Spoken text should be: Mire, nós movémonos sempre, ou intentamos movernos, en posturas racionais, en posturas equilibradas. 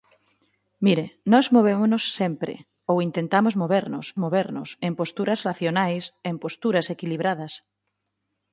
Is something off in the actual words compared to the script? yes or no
yes